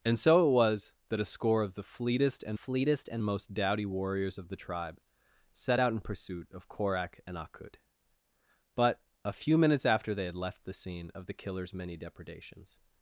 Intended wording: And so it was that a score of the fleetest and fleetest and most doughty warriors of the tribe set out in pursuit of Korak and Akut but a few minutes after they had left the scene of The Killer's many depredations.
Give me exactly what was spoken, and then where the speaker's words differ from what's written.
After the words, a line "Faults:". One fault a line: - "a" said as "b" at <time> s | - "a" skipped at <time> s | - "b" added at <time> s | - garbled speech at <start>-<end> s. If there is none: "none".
And so it was that a score of the fleetest and fleetest and most doughty warriors of the tribe set out in pursuit of Korak and Akut but a few minutes after they had left the scene of The Killer's many depredations.
Faults:
none